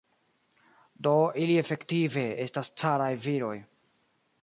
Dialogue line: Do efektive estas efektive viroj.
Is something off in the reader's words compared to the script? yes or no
yes